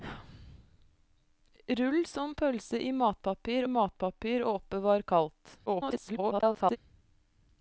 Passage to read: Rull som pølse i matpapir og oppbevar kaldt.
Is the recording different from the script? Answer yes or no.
yes